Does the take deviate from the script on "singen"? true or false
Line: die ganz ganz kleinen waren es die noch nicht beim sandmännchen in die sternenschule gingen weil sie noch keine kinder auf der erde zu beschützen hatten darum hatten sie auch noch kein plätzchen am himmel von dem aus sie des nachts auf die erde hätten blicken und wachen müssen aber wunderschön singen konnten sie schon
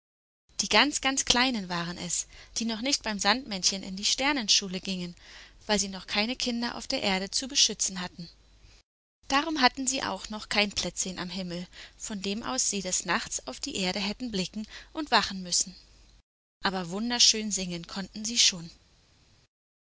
false